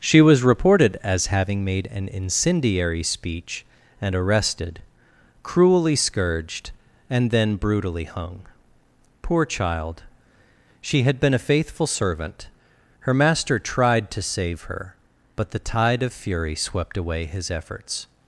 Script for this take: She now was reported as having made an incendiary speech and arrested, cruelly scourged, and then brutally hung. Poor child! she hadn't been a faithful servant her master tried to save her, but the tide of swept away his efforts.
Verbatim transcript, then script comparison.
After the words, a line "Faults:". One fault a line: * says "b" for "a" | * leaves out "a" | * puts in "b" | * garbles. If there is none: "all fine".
She was reported as having made an incendiary speech and arrested, cruelly scourged, and then brutally hung. Poor child! she had been a faithful servant her master tried to save her, but the tide of fury swept away his efforts.
Faults:
* leaves out "now"
* says "had" for "hadn't"
* puts in "fury"